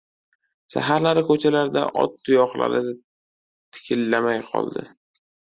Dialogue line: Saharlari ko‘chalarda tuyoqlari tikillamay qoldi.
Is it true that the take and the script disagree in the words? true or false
true